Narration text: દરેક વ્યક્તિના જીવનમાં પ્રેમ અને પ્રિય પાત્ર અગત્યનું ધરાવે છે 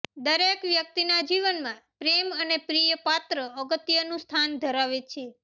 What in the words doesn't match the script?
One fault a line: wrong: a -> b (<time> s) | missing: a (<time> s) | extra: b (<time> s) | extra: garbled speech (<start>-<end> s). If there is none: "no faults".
extra: સ્થાન (4.2 s)